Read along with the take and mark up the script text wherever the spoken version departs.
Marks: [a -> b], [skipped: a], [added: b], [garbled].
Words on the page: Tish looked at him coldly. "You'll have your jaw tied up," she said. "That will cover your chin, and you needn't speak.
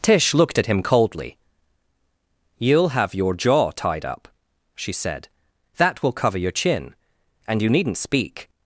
Tish looked at him coldly. "You'll have your jaw tied up," she said. "That will cover your chin, and you needn't speak.